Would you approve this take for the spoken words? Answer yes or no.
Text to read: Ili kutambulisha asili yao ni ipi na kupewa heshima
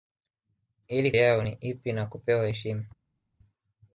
no